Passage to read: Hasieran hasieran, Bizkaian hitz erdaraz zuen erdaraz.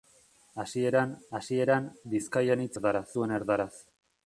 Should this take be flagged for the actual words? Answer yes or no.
no